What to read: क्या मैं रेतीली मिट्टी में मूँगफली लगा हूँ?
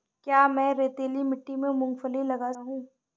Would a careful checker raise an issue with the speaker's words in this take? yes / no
no